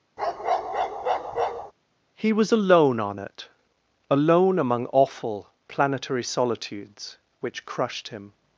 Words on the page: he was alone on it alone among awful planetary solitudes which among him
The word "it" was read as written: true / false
true